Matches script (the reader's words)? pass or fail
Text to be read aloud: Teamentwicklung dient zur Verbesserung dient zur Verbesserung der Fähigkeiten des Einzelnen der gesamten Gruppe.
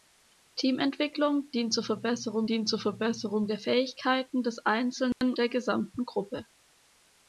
pass